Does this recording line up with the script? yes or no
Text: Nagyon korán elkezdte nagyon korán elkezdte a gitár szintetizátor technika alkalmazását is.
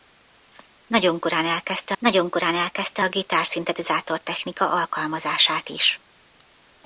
yes